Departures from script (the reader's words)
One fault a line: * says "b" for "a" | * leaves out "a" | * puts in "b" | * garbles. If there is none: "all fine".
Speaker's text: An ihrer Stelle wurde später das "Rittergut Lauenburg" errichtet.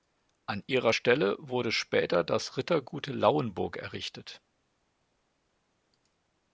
all fine